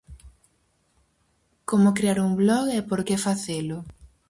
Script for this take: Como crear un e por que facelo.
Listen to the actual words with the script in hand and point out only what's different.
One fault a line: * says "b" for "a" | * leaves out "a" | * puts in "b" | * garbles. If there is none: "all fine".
* puts in "blog"